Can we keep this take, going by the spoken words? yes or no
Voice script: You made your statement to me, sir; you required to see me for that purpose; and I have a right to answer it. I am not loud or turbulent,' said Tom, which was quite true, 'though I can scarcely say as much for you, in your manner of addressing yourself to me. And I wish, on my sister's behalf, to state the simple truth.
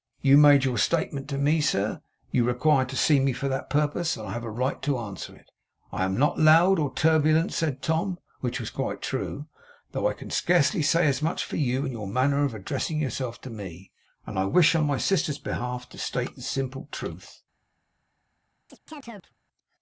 yes